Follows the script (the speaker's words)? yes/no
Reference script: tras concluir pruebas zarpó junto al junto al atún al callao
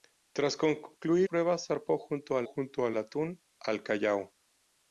yes